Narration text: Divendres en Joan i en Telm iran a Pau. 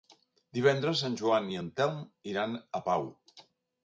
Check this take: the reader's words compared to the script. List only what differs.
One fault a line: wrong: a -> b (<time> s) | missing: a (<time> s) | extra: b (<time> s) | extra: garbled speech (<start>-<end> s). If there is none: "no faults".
no faults